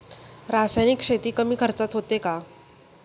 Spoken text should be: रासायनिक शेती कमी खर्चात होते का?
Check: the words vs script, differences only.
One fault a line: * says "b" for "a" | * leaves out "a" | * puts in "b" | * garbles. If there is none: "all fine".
all fine